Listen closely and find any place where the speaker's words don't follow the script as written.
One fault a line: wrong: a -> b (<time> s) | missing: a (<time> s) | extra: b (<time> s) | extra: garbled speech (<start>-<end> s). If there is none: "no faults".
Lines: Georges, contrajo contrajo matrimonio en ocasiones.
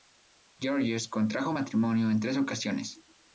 missing: contrajo (1.5 s)
extra: tres (2.2 s)